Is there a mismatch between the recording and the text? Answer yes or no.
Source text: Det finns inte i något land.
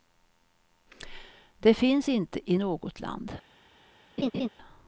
no